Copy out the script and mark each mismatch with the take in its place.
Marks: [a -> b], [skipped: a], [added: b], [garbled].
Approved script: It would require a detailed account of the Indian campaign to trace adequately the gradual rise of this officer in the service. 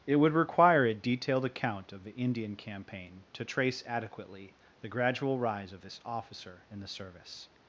It would require a detailed account of the Indian campaign to trace adequately the gradual rise of this officer in the service.